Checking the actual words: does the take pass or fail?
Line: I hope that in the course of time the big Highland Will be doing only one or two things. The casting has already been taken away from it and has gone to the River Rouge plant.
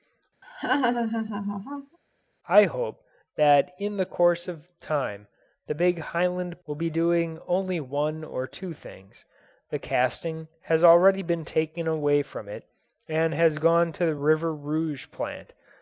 pass